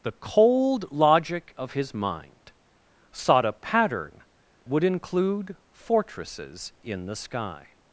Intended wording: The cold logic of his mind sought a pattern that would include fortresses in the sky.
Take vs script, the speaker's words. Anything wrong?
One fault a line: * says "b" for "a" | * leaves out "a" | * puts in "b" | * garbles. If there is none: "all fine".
* leaves out "that"